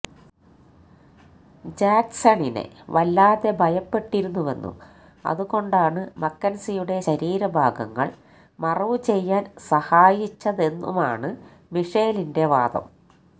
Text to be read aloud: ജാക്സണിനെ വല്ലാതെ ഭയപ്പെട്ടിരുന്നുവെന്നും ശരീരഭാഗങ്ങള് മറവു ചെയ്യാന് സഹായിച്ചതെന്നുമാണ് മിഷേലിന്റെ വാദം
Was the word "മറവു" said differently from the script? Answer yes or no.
no